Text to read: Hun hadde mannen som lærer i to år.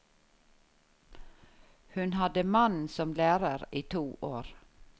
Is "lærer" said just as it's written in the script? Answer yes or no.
yes